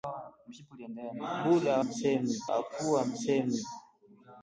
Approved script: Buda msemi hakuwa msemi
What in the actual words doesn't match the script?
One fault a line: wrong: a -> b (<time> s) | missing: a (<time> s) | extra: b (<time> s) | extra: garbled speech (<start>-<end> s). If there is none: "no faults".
no faults